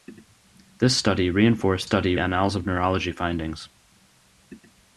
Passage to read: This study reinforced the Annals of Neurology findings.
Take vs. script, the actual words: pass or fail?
fail